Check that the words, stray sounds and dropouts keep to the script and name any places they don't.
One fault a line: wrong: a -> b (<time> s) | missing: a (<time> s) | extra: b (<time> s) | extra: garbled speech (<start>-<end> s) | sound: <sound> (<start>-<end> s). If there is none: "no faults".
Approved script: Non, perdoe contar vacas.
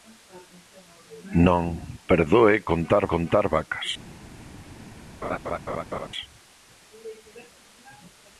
extra: contar (3.1 s)
sound: laugh (5.2-6.1 s)